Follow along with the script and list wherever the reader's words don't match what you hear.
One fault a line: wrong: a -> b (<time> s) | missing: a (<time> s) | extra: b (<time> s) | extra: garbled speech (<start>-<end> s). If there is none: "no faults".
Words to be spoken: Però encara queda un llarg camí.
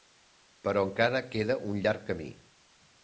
no faults